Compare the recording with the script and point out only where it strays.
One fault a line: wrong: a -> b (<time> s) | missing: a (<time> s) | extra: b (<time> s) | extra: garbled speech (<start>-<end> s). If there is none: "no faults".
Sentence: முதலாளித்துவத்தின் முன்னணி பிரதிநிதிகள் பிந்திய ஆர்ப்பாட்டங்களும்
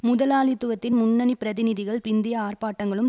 no faults